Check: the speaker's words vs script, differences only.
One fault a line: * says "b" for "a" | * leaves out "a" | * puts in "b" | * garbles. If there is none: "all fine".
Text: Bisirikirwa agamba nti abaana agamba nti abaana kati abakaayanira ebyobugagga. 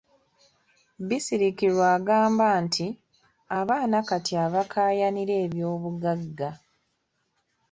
* leaves out "agamba nti abaana"